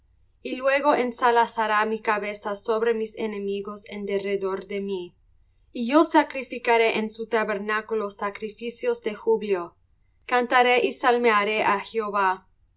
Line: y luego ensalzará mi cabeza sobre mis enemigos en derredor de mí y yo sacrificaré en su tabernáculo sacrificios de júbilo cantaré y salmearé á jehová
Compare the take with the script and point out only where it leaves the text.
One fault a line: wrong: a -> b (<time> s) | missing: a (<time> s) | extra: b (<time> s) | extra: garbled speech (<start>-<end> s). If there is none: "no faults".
no faults